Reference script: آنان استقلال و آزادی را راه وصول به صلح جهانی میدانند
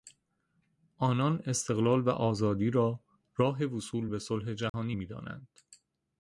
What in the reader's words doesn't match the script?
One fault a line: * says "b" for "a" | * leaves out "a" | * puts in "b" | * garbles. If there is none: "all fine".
all fine